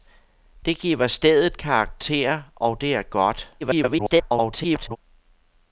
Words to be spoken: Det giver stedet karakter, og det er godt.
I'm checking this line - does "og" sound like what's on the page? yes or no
yes